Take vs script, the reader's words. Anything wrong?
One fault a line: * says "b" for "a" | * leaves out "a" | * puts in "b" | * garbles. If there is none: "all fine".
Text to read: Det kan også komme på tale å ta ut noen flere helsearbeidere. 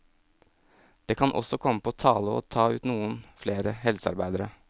all fine